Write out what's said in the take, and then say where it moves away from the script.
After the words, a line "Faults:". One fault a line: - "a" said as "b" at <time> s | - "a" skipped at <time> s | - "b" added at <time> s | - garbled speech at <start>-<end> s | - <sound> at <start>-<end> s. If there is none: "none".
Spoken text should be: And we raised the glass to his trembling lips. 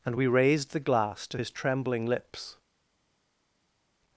And we raised the glass to his trembling lips.
Faults:
none